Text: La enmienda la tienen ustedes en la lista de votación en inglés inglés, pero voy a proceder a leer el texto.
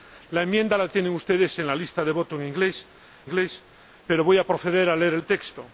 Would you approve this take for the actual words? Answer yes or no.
yes